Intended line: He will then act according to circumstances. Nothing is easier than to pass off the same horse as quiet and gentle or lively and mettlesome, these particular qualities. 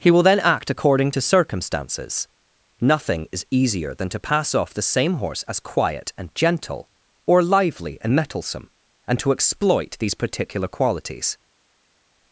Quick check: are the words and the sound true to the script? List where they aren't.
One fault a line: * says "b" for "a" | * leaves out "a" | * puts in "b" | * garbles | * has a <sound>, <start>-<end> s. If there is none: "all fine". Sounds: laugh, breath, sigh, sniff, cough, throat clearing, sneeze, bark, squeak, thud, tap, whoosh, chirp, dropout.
* puts in "and to exploit"